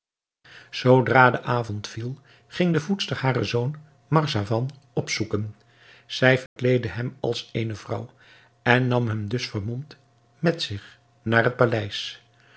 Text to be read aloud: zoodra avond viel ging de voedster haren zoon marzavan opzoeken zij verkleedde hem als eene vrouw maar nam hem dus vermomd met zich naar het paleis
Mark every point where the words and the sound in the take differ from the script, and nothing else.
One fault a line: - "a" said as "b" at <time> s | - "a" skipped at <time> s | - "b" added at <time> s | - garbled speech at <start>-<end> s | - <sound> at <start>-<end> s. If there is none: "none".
- "de" added at 1.3 s
- dropout at 6.5-6.6 s
- "maar" said as "en" at 8.6 s